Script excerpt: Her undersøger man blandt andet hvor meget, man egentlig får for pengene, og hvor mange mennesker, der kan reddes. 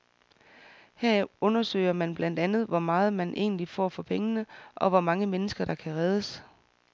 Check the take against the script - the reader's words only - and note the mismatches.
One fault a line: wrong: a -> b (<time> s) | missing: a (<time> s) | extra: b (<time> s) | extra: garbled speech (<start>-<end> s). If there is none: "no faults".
no faults